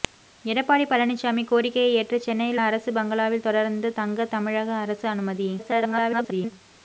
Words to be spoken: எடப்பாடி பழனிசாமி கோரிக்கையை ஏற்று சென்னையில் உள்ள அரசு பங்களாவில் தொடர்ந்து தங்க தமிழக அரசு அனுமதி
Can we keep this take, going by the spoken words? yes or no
no